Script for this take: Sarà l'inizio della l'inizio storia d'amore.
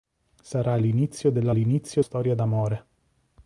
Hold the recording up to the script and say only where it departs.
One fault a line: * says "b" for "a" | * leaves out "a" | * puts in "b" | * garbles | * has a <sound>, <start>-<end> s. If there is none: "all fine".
all fine